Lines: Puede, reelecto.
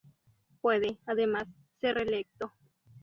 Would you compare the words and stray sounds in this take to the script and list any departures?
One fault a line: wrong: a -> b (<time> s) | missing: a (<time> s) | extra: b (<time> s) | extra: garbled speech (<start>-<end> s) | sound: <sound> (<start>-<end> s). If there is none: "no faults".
extra: además ser (1.1 s)